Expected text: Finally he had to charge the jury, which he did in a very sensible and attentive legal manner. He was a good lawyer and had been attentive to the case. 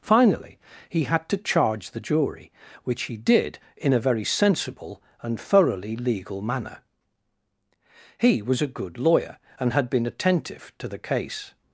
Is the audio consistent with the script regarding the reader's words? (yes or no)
no